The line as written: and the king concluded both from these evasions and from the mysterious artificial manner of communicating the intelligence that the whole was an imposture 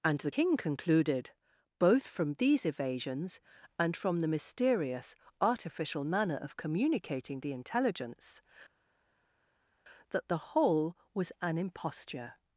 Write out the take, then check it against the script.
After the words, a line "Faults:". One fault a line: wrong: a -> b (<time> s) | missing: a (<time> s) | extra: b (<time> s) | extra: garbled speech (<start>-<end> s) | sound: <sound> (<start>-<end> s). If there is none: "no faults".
and the king concluded both from these evasions and from the mysterious artificial manner of communicating the intelligence that the whole was an imposture
Faults:
no faults